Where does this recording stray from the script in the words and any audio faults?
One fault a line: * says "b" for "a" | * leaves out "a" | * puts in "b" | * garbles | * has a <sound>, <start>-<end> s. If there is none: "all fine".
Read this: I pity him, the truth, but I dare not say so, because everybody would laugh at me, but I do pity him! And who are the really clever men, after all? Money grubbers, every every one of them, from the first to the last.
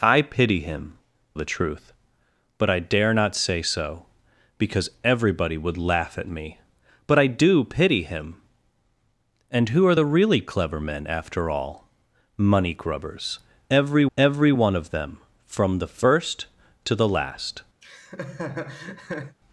* has a laugh, 17.8-19.4 s